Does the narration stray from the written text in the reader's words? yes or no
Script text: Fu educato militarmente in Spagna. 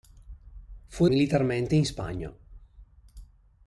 yes